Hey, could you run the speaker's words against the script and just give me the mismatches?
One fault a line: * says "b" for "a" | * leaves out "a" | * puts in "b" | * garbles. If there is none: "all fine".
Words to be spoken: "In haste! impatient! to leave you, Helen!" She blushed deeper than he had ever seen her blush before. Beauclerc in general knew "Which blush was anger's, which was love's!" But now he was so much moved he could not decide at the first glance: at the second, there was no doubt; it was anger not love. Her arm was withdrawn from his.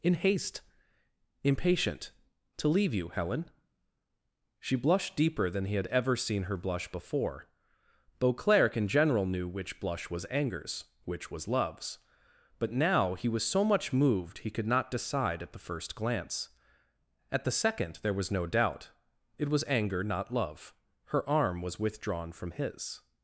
all fine